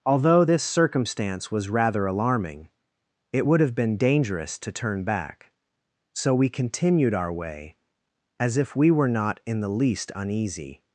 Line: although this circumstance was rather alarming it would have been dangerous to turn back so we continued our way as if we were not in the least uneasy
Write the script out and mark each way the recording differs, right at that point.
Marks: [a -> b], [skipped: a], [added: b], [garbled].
although this circumstance was rather alarming it would have been dangerous to turn back so we continued our way as if we were not in the least uneasy